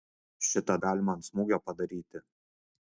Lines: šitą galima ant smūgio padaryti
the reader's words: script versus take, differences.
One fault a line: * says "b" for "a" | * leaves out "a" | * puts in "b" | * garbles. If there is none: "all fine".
all fine